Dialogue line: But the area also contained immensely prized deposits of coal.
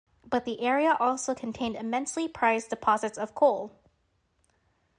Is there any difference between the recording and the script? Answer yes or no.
no